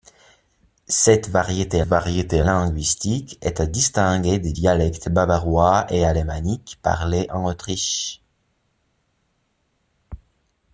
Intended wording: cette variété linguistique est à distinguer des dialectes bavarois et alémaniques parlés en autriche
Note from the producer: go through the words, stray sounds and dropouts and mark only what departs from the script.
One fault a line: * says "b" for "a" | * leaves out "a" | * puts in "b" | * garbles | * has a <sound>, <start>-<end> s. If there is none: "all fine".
* puts in "variété"